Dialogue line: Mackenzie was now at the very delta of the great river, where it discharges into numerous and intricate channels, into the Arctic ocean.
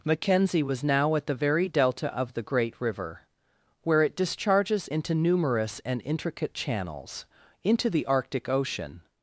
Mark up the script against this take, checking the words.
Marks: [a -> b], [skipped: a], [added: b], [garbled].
Mackenzie was now at the very delta of the great river, where it discharges into numerous and intricate channels, into the Arctic ocean.